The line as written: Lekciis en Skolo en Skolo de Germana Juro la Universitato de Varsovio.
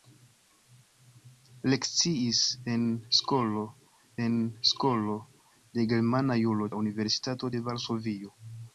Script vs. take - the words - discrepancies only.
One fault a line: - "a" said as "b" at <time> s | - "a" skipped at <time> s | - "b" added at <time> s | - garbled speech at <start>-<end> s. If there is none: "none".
none